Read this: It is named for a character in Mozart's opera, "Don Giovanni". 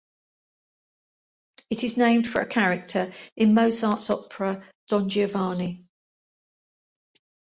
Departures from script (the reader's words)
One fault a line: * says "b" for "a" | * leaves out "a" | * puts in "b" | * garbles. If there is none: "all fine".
all fine